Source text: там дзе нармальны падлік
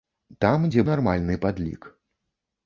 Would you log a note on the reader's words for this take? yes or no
no